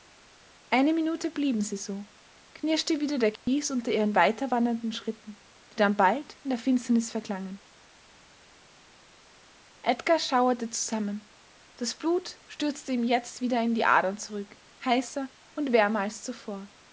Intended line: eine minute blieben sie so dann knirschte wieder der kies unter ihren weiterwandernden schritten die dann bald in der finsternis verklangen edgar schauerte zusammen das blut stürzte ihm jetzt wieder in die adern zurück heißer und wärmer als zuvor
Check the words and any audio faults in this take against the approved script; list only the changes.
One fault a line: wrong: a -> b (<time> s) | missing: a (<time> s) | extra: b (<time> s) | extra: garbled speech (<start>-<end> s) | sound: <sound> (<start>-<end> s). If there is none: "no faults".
missing: dann (2.1 s)
sound: dropout (3.4-3.5 s)